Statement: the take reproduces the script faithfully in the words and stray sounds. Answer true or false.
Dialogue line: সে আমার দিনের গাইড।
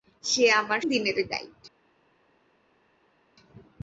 true